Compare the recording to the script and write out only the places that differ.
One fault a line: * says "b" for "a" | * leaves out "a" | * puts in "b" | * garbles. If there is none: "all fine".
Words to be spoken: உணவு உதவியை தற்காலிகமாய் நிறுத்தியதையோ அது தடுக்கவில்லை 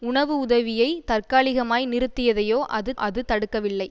* puts in "அது"